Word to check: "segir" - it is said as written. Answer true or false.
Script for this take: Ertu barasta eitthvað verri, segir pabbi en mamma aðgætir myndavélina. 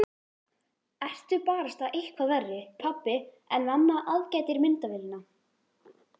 false